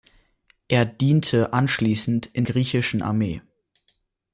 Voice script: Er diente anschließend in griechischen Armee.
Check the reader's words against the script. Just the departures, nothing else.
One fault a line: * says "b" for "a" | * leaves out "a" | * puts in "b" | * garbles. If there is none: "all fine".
all fine